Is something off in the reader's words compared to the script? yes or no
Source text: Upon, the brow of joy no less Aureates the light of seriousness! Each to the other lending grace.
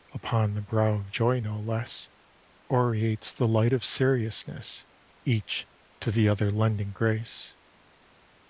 no